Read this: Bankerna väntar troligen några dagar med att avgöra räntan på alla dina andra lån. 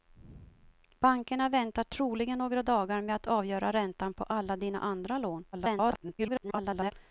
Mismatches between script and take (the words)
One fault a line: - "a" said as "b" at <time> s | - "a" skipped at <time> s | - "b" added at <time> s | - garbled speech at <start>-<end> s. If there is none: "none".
- garbled speech at 5.5-6.9 s